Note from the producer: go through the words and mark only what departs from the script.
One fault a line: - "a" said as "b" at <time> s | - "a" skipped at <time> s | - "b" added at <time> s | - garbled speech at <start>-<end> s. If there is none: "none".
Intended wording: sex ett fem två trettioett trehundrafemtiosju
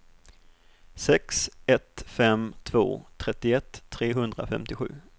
none